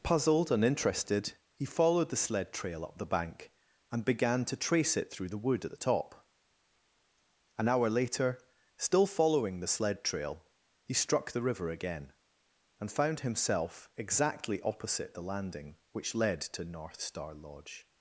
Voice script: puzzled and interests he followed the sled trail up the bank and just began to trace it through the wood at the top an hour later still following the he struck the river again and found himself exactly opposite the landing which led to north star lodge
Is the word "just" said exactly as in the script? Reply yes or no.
no